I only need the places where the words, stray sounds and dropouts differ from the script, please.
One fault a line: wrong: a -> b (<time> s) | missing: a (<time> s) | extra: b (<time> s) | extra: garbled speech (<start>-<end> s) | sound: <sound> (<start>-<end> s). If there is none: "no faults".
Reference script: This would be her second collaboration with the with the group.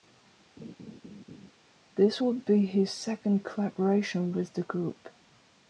sound: laugh (0.6-1.5 s)
wrong: her -> his (2.7 s)
missing: with the (4.6 s)